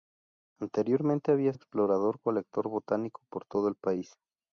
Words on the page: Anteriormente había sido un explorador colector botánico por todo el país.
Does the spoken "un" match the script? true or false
false